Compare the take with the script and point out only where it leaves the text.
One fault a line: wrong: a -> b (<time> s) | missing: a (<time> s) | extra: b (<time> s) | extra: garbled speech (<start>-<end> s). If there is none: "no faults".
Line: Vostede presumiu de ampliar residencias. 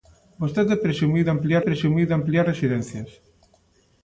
extra: presumiu de ampliar (1.7 s)